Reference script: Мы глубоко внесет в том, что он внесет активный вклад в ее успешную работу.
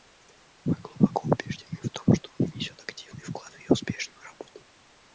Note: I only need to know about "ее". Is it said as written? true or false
true